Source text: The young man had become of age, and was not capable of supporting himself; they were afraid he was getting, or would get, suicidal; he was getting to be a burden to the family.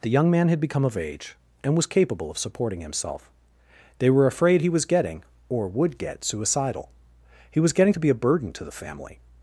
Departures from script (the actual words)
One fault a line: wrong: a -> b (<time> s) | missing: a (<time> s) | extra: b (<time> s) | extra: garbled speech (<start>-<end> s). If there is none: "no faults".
missing: not (1.9 s)